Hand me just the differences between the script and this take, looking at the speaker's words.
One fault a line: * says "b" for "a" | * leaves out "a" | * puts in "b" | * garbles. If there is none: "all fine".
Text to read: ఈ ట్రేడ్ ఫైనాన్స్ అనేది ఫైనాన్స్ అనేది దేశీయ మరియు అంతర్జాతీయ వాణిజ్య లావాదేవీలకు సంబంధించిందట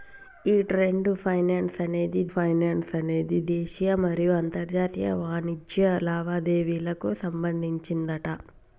all fine